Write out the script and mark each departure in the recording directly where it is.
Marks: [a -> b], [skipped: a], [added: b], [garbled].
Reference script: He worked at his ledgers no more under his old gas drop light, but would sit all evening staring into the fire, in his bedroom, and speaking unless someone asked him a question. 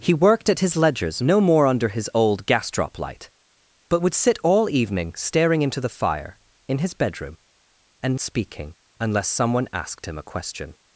He worked at his ledgers no more under his old gas drop light, but would sit all evening staring into the fire, in his bedroom, and speaking unless someone asked him a question.